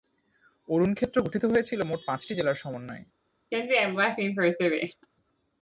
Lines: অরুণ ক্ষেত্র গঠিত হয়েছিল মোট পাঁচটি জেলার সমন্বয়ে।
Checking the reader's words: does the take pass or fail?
pass